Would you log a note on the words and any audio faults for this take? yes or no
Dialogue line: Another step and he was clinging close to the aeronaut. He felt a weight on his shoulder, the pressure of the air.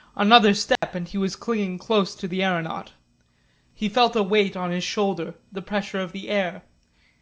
yes